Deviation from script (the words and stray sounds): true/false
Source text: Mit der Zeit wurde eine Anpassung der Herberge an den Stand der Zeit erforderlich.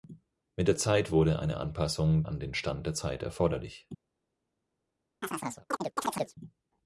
true